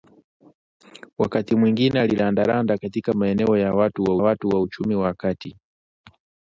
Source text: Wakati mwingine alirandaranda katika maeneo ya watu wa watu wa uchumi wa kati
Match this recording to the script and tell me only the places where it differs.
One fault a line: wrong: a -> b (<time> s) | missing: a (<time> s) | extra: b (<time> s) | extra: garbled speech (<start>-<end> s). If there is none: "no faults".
no faults